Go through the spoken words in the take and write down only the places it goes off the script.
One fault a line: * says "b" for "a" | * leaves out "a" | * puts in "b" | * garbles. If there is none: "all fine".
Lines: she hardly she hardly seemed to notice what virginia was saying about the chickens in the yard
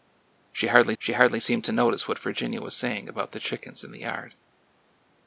all fine